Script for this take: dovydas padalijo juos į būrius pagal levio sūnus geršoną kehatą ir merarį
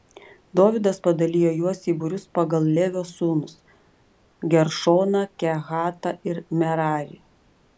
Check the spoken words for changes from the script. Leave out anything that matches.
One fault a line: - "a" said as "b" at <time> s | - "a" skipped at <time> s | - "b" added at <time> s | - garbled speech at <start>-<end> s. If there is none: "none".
none